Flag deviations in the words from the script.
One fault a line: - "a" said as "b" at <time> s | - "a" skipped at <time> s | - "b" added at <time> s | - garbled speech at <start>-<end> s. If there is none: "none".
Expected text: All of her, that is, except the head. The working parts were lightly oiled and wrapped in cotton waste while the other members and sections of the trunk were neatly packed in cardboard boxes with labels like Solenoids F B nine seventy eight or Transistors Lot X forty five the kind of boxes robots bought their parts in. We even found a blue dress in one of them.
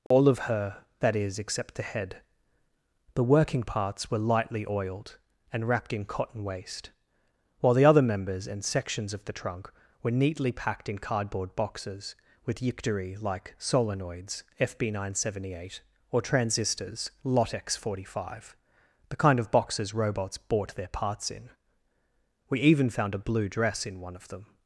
- "labels" said as "yictory" at 12.6 s